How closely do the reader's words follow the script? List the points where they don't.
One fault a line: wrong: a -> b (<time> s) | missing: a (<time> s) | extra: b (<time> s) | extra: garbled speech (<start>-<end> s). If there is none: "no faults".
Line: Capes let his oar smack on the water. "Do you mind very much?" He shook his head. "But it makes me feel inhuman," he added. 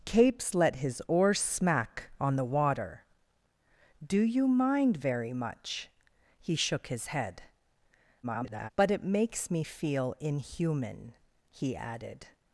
extra: garbled speech (8.2-8.7 s)